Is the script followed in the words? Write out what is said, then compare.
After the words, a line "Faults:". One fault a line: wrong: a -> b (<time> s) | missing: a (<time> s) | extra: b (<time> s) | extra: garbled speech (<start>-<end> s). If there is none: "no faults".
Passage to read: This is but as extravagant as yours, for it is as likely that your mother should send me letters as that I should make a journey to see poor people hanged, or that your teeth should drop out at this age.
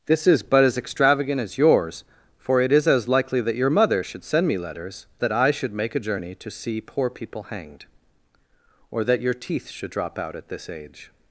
This is but as extravagant as yours, for it is as likely that your mother should send me letters that I should make a journey to see poor people hanged, or that your teeth should drop out at this age.
Faults:
missing: as (5.1 s)